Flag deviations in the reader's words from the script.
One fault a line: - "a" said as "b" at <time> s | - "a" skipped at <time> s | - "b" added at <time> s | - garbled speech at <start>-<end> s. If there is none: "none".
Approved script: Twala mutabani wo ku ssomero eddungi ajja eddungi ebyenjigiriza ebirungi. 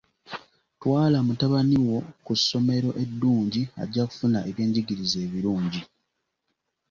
- "eddungi" said as "kufuna" at 4.1 s